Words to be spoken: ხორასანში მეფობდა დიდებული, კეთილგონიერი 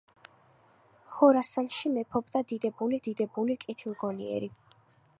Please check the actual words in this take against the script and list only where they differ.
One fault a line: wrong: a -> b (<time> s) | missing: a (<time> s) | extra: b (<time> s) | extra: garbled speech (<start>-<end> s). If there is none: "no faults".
extra: დიდებული (3.1 s)